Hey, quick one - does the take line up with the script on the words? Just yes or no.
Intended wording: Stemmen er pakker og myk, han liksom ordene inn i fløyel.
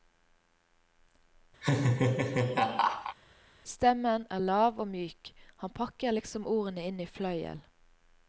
no